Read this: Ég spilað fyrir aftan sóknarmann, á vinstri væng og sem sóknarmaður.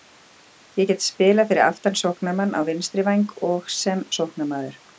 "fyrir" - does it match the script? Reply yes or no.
yes